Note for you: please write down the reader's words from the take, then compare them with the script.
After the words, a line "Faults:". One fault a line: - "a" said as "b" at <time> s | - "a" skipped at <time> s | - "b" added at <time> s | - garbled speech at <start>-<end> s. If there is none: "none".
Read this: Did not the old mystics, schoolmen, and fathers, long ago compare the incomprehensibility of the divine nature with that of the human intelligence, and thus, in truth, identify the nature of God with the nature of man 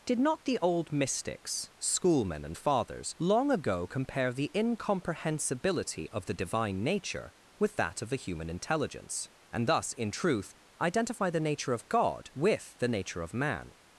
Did not the old mystics, schoolmen, and fathers, long ago compare the incomprehensibility of the divine nature with that of the human intelligence, and thus, in truth, identify the nature of God with the nature of man
Faults:
none